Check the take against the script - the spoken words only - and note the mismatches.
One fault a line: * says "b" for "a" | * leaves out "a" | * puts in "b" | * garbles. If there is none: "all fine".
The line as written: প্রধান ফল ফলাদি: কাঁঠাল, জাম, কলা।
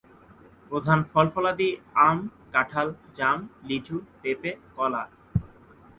* puts in "আম"
* puts in "লিচু পেঁপে"